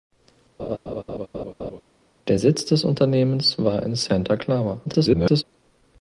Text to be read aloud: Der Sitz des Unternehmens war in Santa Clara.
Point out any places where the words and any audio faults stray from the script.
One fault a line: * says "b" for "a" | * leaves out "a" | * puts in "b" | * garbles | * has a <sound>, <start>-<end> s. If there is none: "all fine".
* has a laugh, 0.6-1.8 s
* garbles